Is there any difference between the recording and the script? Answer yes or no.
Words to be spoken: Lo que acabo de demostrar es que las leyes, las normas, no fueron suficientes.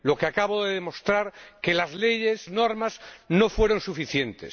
yes